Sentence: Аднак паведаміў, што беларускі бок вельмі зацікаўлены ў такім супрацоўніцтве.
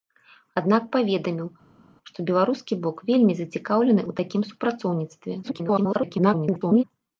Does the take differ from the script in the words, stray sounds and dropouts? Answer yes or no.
yes